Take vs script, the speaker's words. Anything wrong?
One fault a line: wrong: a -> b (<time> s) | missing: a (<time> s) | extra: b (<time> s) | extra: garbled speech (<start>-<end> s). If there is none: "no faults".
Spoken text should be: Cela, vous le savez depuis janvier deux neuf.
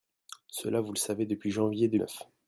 no faults